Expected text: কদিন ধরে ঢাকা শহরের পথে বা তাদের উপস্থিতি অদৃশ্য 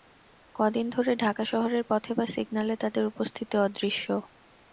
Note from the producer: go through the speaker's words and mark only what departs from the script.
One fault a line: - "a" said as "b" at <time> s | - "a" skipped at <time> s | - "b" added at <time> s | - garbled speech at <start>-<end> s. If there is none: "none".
- "সিগন্যালে" added at 2.3 s